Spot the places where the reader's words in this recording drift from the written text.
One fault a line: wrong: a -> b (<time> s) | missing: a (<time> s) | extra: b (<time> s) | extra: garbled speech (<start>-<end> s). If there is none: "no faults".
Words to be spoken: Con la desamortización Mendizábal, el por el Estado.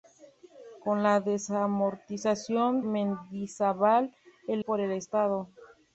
no faults